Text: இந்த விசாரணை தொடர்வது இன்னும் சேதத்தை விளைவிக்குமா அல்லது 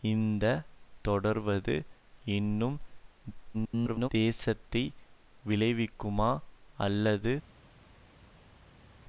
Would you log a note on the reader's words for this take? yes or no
yes